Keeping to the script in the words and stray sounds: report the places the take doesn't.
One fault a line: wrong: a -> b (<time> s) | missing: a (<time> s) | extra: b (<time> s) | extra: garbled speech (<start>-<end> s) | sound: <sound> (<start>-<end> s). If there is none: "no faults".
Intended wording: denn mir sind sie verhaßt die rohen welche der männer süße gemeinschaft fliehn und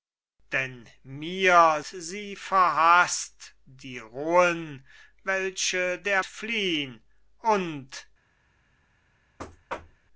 missing: sind (1.8 s)
missing: männer süße gemeinschaft (6.2 s)
sound: thud (9.4-10.1 s)